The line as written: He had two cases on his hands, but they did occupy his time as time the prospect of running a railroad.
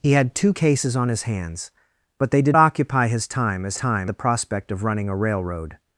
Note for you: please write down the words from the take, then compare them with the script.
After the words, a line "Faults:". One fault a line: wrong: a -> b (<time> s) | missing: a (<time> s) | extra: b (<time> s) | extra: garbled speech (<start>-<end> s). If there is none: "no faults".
He had two cases on his hands, but they did occupy his time as time the prospect of running a railroad.
Faults:
no faults